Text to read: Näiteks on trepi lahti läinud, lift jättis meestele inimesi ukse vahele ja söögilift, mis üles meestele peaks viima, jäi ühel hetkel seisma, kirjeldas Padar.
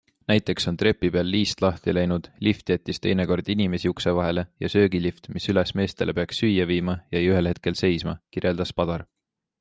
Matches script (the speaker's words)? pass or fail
fail